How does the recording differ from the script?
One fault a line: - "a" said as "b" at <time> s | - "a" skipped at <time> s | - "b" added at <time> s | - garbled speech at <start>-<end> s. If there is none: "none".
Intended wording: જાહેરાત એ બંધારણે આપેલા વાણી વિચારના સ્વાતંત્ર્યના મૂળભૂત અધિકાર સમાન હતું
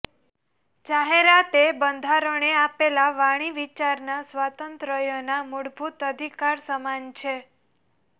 - "હતું" said as "છે" at 7.2 s